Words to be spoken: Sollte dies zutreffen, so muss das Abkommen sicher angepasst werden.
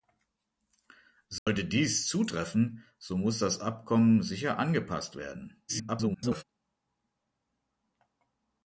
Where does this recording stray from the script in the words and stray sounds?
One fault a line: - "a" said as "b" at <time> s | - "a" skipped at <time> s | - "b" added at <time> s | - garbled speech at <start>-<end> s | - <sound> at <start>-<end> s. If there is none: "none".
- dropout at 1.4-1.5 s
- garbled speech at 5.7-6.4 s